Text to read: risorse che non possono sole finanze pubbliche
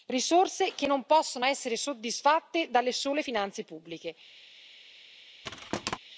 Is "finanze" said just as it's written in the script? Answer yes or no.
yes